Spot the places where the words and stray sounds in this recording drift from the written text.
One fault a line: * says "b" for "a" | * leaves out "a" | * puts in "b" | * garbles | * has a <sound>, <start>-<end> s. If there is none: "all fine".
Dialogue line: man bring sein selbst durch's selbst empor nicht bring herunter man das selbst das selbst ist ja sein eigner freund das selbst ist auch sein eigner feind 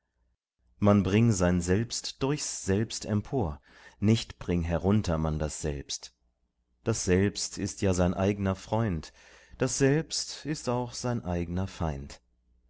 all fine